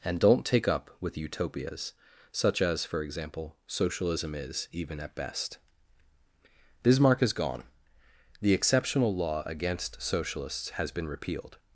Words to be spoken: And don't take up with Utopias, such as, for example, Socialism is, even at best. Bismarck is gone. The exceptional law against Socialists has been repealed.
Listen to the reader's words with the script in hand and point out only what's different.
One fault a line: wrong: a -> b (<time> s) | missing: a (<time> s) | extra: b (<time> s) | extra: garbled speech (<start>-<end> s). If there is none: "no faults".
no faults